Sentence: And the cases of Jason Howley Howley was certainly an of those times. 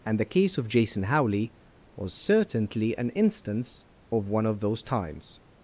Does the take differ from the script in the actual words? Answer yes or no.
yes